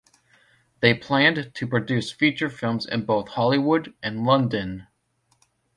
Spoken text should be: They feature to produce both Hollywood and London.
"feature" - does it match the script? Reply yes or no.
no